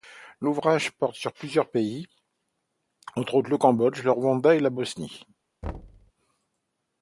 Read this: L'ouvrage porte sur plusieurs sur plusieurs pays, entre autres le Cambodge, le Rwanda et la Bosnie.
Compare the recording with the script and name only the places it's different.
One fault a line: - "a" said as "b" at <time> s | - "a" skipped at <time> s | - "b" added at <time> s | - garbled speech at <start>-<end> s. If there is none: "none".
- "sur plusieurs" skipped at 1.7 s